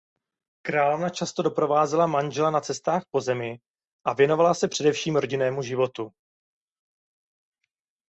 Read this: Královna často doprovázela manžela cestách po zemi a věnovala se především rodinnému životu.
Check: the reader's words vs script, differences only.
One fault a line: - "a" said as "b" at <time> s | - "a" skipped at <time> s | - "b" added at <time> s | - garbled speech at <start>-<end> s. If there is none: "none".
- "na" added at 2.5 s